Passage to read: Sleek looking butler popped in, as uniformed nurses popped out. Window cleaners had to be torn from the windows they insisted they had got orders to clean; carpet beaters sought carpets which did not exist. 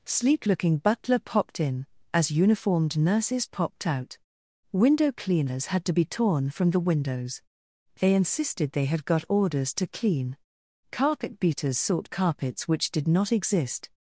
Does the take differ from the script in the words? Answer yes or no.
no